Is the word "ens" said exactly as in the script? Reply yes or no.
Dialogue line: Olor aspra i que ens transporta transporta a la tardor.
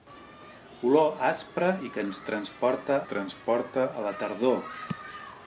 yes